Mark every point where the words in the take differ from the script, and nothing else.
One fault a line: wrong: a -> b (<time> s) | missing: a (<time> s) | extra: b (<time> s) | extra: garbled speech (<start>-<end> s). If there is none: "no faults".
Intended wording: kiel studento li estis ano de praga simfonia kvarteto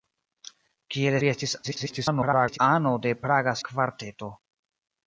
missing: studento (1.2 s)
extra: garbled speech (1.6-2.6 s)
missing: simfonia (3.5 s)